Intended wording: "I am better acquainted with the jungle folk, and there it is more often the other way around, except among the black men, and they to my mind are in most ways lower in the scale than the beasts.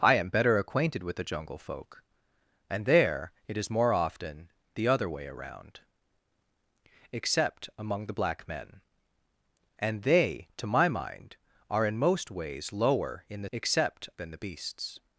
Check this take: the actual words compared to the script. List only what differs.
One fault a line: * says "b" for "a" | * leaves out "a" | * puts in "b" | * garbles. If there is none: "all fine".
* says "except" for "scale"